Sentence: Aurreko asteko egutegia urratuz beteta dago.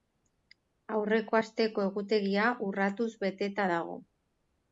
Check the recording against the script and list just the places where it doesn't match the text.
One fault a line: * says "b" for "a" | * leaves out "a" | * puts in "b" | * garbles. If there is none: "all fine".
all fine